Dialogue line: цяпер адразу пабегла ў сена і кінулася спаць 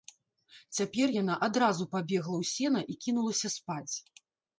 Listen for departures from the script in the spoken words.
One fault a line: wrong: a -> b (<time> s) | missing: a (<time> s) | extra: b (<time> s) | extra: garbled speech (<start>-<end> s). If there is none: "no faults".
extra: яна (1.2 s)